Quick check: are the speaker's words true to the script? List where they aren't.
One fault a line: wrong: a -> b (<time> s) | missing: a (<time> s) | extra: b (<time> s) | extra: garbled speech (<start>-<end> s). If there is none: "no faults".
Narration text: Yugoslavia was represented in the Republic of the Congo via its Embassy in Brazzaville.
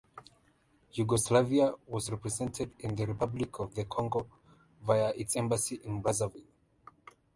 no faults